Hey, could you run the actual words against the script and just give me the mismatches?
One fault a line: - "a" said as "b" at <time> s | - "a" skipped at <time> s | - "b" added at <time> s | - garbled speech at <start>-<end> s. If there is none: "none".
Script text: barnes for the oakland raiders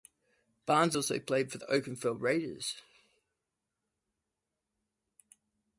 - "also played" added at 0.9 s